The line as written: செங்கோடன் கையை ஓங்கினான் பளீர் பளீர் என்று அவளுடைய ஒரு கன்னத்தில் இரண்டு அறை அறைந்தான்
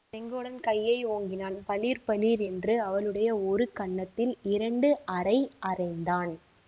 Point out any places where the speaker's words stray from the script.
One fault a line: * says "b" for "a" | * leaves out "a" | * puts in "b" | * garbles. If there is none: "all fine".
all fine